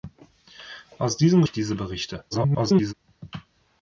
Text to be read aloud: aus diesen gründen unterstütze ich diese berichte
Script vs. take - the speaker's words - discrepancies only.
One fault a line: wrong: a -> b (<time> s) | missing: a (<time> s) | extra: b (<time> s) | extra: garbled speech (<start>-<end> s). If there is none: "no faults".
missing: gründen unterstütze (1.4 s)
extra: garbled speech (2.3-2.9 s)